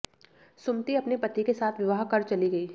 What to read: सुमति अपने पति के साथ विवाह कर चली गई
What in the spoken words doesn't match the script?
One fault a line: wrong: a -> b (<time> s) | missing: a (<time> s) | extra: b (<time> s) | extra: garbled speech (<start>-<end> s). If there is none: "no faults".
no faults